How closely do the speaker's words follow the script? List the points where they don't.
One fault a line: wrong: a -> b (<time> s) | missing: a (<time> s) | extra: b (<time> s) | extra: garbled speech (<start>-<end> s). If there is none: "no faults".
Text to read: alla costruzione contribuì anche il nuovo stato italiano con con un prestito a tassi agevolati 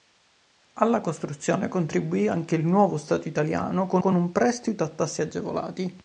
no faults